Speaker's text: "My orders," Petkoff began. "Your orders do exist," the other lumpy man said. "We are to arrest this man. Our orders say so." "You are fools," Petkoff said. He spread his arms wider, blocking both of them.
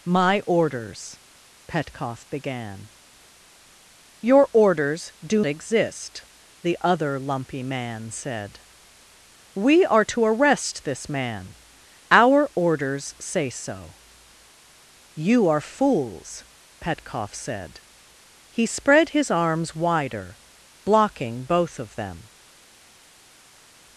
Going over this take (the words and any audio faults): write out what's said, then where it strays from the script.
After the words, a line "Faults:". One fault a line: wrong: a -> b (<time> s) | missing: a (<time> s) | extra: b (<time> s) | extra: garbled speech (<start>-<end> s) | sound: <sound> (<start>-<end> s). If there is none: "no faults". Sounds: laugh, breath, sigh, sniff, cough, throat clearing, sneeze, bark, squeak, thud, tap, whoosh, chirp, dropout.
"My orders," Petkoff began. "Your orders do exist," the other lumpy man said. "We are to arrest this man. Our orders say so." "You are fools," Petkoff said. He spread his arms wider, blocking both of them.
Faults:
no faults